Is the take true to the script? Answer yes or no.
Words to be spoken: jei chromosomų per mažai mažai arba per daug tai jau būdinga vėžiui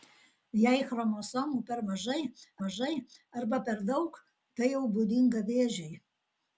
yes